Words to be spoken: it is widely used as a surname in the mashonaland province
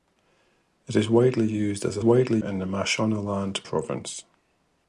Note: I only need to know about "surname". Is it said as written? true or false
false